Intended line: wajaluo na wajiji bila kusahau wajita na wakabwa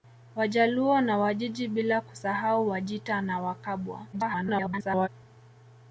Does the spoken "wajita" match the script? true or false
true